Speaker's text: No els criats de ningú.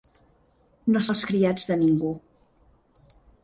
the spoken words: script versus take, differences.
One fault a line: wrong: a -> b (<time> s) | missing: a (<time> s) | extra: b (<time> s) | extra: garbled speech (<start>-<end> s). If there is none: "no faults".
no faults